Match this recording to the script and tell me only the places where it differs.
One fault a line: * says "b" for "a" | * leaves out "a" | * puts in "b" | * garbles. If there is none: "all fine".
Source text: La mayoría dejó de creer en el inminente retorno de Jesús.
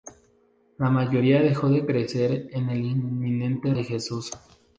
* leaves out "retorno"